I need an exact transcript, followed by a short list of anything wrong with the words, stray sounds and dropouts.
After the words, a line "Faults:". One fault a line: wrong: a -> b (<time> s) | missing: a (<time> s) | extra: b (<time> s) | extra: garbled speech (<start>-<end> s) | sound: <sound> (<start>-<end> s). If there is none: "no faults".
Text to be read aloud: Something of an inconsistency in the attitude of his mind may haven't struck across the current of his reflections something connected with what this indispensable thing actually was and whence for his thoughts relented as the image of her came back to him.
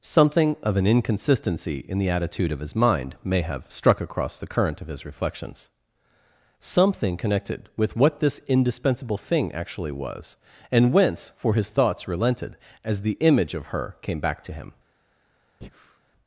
Something of an inconsistency in the attitude of his mind may have struck across the current of his reflections something connected with what this indispensable thing actually was and whence for his thoughts relented as the image of her came back to him.
Faults:
wrong: haven't -> have (3.4 s)
sound: breath (15.6-16.0 s)